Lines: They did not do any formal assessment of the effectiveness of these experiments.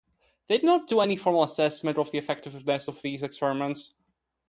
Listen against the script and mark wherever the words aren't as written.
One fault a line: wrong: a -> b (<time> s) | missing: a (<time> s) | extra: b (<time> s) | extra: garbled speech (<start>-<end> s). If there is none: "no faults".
no faults